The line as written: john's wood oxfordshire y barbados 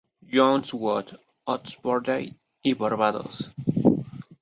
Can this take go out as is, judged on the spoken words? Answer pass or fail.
pass